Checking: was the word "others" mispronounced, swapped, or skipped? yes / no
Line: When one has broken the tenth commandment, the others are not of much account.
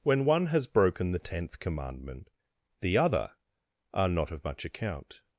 yes